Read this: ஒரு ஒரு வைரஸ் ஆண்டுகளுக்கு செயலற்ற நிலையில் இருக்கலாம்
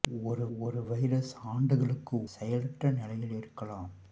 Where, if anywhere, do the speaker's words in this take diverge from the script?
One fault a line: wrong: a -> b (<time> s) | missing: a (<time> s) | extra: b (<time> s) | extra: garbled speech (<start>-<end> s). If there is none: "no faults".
no faults